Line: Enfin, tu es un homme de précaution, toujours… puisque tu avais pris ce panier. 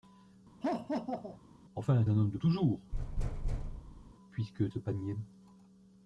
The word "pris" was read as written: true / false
false